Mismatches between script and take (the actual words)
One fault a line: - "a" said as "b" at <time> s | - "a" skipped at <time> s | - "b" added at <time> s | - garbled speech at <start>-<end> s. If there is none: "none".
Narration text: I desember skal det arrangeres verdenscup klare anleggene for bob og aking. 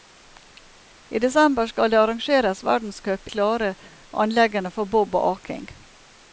none